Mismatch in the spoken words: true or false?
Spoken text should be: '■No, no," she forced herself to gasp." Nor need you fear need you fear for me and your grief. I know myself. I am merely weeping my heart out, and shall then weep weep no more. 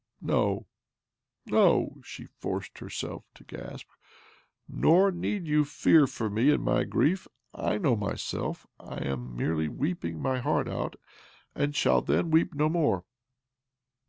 true